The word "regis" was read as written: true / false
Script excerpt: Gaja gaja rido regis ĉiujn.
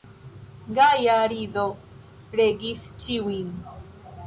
true